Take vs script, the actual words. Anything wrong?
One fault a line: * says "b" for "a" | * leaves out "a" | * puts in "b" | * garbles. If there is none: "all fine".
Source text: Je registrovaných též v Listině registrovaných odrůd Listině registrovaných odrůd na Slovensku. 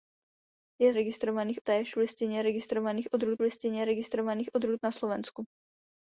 all fine